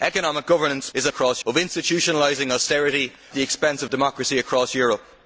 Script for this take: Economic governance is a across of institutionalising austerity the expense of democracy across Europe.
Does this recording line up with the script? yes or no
yes